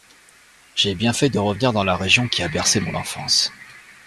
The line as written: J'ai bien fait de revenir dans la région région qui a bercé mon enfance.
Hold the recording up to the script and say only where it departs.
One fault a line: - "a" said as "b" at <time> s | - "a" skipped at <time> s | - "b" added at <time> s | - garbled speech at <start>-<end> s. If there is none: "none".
- "région" skipped at 2.3 s